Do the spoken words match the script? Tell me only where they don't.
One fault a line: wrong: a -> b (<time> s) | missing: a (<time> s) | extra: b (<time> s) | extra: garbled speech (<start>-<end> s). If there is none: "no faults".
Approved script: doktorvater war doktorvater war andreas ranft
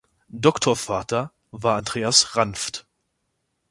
missing: doktorvater war (1.8 s)